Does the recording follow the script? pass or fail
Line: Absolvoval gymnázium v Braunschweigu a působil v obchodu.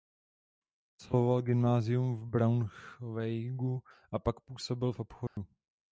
fail